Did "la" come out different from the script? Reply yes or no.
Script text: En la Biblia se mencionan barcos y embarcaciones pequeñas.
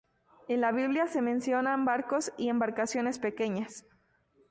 no